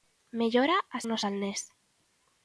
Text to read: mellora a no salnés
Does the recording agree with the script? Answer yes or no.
yes